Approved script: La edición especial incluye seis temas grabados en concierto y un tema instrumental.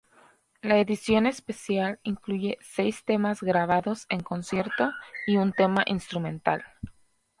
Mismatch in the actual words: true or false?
false